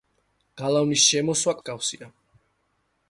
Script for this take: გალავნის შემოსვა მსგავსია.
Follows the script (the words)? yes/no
yes